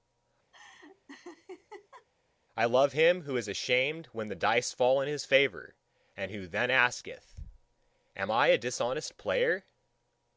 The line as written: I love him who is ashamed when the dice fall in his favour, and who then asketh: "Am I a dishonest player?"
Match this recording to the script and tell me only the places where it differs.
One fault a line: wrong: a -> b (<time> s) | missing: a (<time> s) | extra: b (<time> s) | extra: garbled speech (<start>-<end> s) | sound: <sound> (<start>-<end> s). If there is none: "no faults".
sound: laugh (0.5-2.1 s)